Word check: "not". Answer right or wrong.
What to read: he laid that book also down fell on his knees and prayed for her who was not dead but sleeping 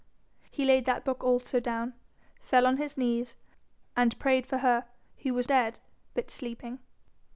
wrong